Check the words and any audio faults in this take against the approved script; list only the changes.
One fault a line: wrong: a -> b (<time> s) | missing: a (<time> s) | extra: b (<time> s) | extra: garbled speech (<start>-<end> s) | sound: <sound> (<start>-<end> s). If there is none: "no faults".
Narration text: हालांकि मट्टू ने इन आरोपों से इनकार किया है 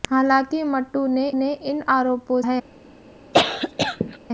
extra: ने (1.3 s)
missing: से इनकार किया (2.4 s)
sound: cough (3.3-4.2 s)